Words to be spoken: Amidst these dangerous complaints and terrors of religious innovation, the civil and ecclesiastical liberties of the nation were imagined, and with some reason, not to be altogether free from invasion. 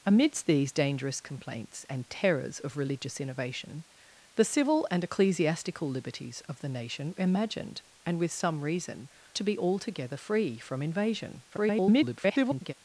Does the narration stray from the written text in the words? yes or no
yes